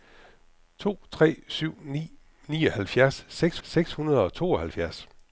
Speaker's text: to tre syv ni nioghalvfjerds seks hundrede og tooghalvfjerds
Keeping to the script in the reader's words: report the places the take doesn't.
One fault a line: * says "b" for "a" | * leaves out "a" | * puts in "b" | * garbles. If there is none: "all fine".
* puts in "seks"